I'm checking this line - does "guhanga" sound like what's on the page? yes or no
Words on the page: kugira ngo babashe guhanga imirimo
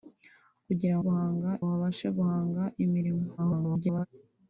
yes